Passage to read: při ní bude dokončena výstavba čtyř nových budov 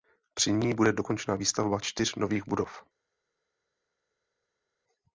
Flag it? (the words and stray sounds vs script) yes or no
no